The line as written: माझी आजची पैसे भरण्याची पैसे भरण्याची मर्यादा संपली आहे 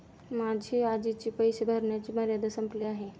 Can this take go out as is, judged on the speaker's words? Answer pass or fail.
fail